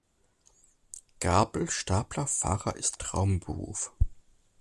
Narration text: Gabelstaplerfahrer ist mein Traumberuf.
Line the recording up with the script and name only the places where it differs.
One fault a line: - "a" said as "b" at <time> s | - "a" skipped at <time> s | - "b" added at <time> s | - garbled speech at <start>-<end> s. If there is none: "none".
- "mein" skipped at 3.0 s